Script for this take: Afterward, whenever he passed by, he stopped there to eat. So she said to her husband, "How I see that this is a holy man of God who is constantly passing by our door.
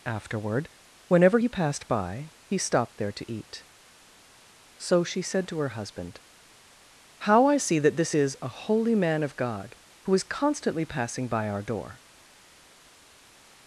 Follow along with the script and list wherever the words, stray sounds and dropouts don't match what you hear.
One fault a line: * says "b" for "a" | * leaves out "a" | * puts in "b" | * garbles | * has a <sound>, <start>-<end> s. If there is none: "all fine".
all fine